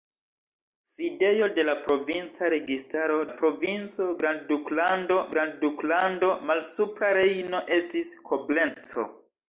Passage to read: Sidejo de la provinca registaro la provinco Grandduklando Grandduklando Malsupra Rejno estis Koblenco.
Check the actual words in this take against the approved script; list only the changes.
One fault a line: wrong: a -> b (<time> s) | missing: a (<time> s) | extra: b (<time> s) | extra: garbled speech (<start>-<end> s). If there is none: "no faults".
no faults